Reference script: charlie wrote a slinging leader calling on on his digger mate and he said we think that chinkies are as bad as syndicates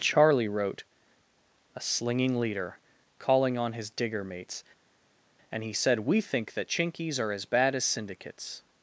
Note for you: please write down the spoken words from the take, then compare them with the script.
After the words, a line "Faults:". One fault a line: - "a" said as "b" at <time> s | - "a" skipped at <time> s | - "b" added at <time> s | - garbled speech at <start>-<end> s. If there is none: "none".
charlie wrote a slinging leader calling on his digger mates and he said we think that chinkies are as bad as syndicates
Faults:
- "on" skipped at 3.7 s
- "mate" said as "mates" at 4.2 s